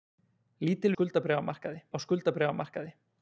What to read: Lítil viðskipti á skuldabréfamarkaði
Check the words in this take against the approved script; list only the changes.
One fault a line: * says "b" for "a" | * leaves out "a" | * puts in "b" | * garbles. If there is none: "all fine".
* says "skuldabréfamarkaði" for "viðskipti"